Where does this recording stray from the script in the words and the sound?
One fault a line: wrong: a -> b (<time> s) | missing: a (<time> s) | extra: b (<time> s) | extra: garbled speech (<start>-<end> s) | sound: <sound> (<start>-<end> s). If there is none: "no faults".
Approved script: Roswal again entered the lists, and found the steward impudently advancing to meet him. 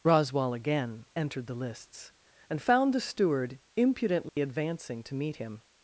sound: dropout (4.3-4.4 s)